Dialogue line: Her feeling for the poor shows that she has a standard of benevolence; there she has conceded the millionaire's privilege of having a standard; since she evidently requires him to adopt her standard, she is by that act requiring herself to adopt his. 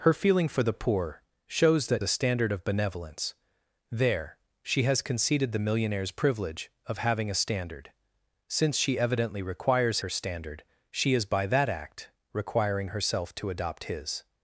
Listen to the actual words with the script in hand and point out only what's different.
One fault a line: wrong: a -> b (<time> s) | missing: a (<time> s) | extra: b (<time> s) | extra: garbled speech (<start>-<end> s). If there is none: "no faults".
missing: she has (2.0 s)
missing: him to adopt (10.0 s)